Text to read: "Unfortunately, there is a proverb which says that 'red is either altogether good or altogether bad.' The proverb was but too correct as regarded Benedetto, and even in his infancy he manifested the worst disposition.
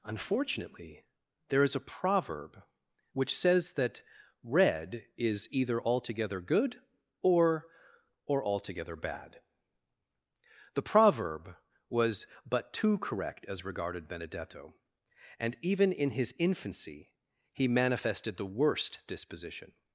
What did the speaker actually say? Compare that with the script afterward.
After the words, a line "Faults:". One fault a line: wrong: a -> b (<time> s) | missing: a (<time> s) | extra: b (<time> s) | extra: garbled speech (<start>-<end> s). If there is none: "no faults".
"Unfortunately, there is a proverb which says that 'red is either altogether good or or altogether bad.' The proverb was but too correct as regarded Benedetto, and even in his infancy he manifested the worst disposition.
Faults:
extra: or (8.2 s)